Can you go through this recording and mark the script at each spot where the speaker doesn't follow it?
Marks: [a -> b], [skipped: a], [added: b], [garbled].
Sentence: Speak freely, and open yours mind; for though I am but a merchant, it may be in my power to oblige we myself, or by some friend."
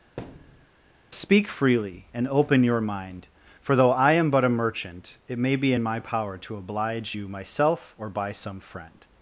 Speak freely, and open [yours -> your] mind; for though I am but a merchant, it may be in my power to oblige [we -> you] myself, or by some friend."